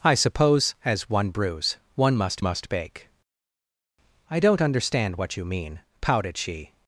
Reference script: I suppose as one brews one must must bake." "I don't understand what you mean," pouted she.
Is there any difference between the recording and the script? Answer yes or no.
no